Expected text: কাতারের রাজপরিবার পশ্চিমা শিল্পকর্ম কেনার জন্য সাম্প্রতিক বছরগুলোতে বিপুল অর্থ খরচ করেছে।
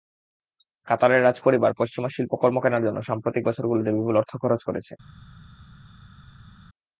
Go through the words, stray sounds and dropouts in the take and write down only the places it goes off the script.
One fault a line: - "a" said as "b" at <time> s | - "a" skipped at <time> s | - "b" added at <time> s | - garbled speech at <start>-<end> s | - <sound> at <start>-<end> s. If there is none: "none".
none